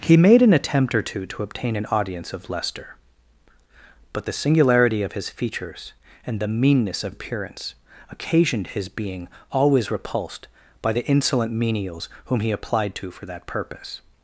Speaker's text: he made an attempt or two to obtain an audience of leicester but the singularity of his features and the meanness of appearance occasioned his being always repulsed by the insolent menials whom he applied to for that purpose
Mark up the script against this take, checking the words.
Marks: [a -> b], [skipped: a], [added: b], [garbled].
he made an attempt or two to obtain an audience of leicester but the singularity of his features and the meanness of appearance occasioned his being always repulsed by the insolent menials whom he applied to for that purpose